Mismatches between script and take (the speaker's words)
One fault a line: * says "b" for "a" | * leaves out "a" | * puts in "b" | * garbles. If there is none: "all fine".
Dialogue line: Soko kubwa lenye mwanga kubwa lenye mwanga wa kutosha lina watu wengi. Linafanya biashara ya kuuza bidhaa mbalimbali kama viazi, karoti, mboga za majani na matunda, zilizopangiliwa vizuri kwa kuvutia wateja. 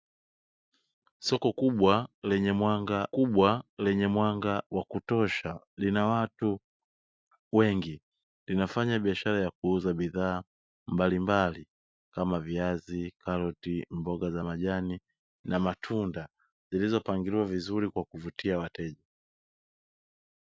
all fine